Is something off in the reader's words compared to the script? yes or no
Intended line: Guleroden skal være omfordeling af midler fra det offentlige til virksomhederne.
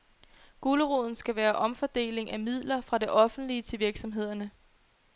no